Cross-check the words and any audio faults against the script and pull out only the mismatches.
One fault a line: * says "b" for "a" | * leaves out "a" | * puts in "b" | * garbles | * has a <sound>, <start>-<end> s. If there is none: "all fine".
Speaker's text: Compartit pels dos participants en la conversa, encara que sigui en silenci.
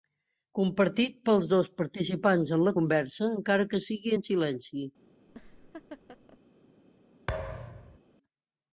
* has a laugh, 5.3-6.4 s
* has a thud, 7.3-8.0 s